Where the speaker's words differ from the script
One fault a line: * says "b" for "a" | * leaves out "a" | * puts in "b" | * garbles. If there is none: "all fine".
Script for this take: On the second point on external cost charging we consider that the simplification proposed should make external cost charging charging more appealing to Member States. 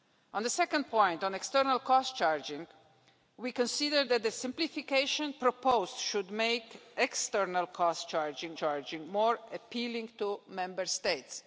all fine